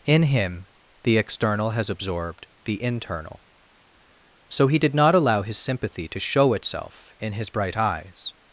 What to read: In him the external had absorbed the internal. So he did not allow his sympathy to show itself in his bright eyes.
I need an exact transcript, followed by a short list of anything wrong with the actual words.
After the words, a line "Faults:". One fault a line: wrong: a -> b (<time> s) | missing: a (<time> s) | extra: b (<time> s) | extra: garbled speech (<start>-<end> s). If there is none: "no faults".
In him the external has absorbed the internal. So he did not allow his sympathy to show itself in his bright eyes.
Faults:
wrong: had -> has (1.7 s)